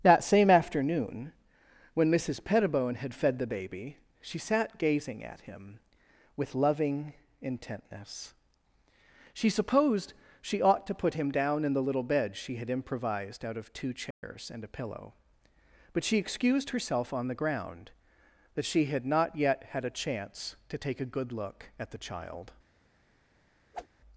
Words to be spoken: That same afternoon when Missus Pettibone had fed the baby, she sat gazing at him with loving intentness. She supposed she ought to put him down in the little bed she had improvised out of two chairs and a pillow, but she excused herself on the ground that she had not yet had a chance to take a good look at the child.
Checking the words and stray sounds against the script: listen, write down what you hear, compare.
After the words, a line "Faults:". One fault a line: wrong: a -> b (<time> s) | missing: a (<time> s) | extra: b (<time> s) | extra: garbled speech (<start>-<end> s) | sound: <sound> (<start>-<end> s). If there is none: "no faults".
That same afternoon when Missus Pettibone had fed the baby, she sat gazing at him with loving intentness. She supposed she ought to put him down in the little bed she had improvised out of two chairs and a pillow, but she excused herself on the ground that she had not yet had a chance to take a good look at the child.
Faults:
sound: dropout (14.1-14.2 s)
sound: whoosh (23.7-23.9 s)